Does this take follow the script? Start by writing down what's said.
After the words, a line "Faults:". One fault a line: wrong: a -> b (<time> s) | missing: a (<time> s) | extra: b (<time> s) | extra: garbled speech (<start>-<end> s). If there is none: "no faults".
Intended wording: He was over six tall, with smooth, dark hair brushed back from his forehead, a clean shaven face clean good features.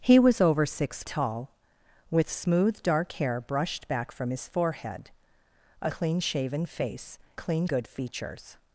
He was over six tall, with smooth, dark hair brushed back from his forehead, a clean shaven face clean good features.
Faults:
no faults